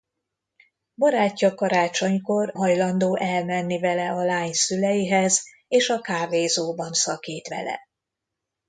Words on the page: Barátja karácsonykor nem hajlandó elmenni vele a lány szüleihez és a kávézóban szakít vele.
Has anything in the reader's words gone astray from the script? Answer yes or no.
yes